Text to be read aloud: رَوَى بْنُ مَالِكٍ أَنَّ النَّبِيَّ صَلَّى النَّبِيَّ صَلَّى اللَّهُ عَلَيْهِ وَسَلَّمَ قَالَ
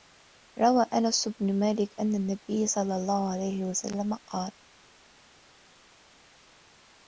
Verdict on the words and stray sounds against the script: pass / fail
fail